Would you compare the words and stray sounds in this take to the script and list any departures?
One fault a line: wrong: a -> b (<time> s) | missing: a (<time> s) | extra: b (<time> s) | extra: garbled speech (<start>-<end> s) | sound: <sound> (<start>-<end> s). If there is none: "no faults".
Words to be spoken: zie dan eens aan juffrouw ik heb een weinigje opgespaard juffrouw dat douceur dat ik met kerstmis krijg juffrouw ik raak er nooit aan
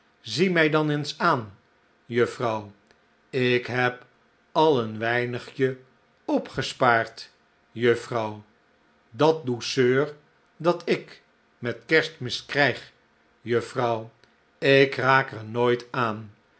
extra: mij (0.5 s)
extra: al (4.5 s)